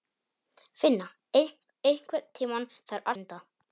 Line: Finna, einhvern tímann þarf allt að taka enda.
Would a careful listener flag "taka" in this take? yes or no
yes